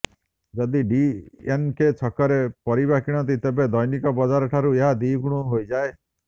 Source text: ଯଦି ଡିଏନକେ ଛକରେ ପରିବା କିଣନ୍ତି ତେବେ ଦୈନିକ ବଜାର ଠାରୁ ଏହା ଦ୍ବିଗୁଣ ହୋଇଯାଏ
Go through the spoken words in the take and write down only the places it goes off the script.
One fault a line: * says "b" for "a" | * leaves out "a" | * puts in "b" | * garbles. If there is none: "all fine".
all fine